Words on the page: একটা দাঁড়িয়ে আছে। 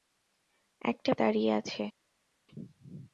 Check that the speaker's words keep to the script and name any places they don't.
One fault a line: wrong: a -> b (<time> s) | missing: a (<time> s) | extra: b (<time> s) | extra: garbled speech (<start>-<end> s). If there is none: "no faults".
no faults